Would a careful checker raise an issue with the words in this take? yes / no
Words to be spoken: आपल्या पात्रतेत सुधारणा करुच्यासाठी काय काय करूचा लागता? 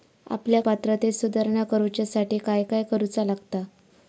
no